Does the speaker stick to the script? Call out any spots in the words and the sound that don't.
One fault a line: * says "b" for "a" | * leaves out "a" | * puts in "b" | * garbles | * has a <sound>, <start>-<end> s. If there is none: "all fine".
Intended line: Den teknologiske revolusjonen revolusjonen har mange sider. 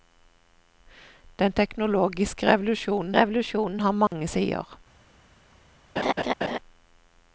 * has a dropout, 4.1-4.1 s
* has a laugh, 6.0-6.6 s